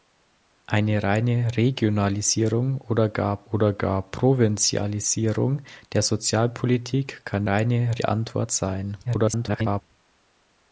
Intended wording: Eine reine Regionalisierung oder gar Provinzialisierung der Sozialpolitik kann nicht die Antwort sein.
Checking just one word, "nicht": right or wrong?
wrong